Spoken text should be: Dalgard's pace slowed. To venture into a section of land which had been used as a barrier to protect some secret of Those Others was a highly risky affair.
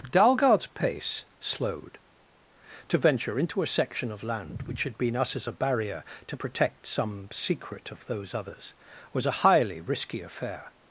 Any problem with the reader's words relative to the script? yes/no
yes